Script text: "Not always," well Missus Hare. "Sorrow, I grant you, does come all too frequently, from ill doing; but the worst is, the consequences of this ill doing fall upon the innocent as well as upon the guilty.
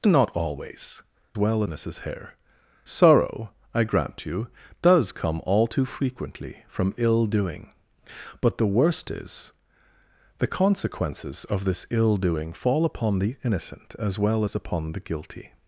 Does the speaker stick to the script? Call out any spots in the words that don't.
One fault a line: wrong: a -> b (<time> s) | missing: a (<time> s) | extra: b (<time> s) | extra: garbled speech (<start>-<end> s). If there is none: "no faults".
no faults